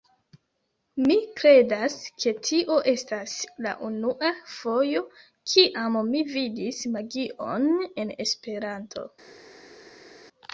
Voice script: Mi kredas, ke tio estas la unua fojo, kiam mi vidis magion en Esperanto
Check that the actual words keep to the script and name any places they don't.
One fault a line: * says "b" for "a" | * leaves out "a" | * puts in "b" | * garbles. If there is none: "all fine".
all fine